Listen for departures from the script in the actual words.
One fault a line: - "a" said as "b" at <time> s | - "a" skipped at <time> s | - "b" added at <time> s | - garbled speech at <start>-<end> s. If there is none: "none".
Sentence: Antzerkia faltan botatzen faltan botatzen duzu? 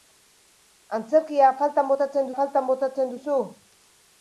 none